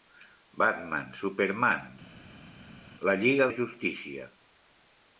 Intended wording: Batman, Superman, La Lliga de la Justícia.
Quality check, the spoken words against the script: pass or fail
fail